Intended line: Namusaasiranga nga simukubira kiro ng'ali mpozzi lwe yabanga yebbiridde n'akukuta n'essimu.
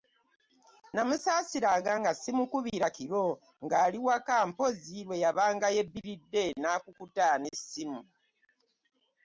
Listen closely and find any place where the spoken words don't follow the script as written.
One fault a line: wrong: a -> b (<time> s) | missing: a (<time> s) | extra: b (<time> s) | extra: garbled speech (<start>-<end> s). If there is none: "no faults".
extra: waka (4.1 s)